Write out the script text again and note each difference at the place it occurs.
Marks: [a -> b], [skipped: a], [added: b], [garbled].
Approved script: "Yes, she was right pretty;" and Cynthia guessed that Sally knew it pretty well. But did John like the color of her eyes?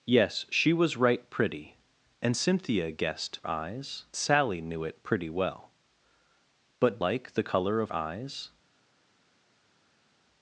"Yes, she was right pretty;" and Cynthia guessed [that -> eyes] Sally knew it pretty well. But [skipped: did John] like the color of [skipped: her] eyes?